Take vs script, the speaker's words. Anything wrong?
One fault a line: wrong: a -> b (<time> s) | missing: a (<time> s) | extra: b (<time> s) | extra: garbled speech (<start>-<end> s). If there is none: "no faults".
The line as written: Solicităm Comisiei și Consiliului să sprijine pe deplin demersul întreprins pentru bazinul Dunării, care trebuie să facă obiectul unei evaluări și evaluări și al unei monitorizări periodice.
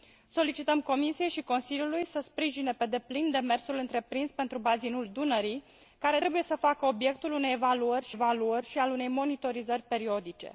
no faults